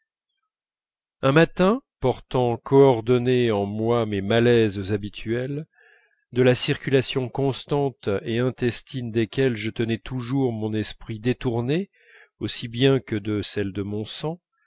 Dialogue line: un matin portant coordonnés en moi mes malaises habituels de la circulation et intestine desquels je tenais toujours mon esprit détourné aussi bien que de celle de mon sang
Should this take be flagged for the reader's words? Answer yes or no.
yes